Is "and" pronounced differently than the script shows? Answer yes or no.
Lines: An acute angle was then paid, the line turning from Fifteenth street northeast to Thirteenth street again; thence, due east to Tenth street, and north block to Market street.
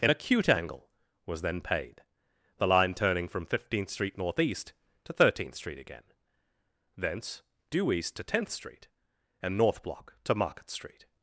no